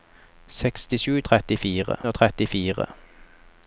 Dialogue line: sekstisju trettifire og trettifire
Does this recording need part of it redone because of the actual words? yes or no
no